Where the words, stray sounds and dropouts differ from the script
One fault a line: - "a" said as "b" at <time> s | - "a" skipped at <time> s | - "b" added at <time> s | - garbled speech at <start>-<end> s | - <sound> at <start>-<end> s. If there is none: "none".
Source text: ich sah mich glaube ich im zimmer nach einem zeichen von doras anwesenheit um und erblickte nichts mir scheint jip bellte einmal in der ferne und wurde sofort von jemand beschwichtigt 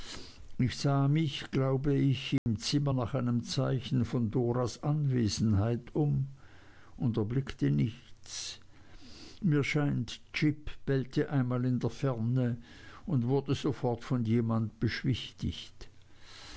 - dropout at 2.4-2.5 s